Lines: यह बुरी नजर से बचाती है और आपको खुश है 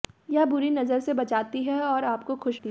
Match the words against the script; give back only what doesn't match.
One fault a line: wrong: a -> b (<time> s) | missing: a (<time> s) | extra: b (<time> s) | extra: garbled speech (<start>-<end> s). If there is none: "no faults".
no faults